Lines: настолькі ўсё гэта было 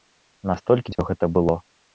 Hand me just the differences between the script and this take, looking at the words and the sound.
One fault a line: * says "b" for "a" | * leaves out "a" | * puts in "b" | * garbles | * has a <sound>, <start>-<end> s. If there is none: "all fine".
* has a dropout, 0.9-1.0 s